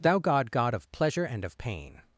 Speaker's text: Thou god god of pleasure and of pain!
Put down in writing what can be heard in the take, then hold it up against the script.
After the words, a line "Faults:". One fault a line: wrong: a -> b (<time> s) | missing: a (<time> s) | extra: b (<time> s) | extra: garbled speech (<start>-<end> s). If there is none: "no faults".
Thou god god of pleasure and of pain!
Faults:
no faults